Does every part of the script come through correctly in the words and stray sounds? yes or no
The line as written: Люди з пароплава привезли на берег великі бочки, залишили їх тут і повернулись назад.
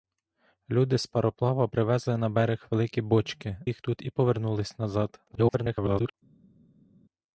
no